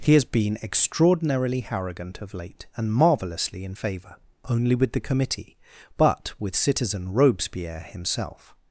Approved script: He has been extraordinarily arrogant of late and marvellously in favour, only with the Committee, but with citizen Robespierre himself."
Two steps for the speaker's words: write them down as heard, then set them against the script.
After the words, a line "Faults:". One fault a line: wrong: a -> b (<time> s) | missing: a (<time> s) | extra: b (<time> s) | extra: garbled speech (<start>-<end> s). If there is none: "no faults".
He has been extraordinarily arrogant of late and marvellously in favour, only with the Committee, but with citizen Robespierre himself."
Faults:
no faults